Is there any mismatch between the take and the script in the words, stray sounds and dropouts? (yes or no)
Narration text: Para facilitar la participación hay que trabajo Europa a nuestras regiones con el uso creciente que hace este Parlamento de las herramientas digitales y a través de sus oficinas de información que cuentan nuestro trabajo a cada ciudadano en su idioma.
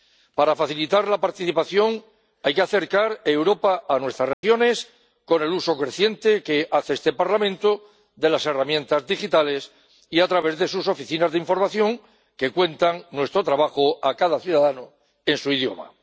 yes